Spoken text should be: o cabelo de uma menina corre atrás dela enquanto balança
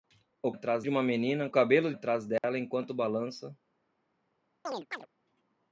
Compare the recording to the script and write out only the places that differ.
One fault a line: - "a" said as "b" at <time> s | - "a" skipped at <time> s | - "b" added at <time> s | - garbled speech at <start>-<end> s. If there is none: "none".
- "cabelo" said as "atrás" at 0.5 s
- "corre" said as "cabelo" at 1.5 s